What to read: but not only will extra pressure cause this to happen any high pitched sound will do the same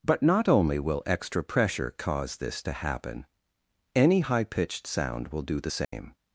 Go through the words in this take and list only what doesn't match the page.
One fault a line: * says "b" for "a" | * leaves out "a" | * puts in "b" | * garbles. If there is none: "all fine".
all fine